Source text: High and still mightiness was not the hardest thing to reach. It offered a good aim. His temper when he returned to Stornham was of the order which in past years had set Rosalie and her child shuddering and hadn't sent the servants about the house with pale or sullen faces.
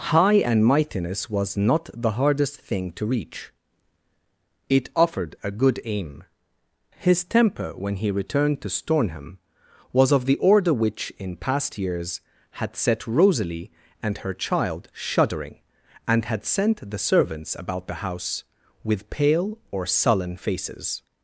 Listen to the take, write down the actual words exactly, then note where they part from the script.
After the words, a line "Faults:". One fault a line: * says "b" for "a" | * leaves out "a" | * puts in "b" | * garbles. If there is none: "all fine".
High and mightiness was not the hardest thing to reach. It offered a good aim. His temper when he returned to Stornham was of the order which in past years had set Rosalie and her child shuddering and had sent the servants about the house with pale or sullen faces.
Faults:
* leaves out "still"
* says "had" for "hadn't"